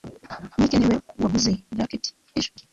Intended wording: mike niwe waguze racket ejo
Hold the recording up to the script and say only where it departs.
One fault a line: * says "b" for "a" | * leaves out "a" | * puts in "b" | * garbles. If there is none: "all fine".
all fine